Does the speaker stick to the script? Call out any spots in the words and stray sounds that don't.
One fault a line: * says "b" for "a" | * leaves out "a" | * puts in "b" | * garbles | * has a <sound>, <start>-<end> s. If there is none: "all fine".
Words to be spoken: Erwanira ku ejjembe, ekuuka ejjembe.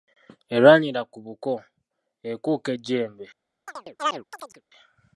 * says "buko" for "ejjembe"
* has a chirp, 3.7-4.6 s